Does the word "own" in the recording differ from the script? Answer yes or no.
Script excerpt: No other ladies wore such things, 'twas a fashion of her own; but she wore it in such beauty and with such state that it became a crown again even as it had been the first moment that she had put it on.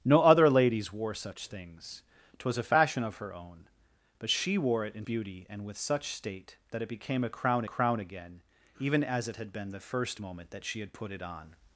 no